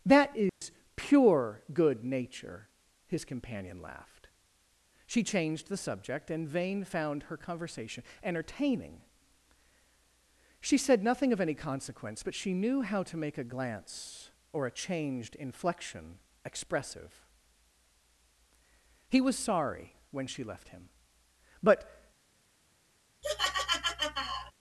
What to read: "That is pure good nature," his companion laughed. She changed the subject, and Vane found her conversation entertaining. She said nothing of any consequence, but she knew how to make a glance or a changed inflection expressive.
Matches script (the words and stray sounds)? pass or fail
fail